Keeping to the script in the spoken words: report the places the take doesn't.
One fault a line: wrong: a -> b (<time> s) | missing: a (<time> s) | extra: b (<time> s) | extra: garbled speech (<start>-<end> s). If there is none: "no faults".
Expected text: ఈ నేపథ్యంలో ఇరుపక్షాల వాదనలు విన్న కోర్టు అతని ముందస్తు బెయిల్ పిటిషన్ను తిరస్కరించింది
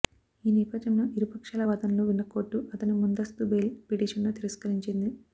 no faults